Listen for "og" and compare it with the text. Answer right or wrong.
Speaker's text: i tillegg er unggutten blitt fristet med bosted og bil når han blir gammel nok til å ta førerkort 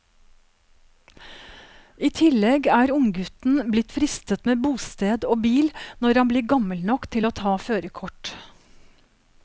right